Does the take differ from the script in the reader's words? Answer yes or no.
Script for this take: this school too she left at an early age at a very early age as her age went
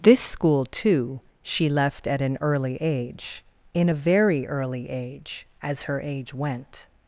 yes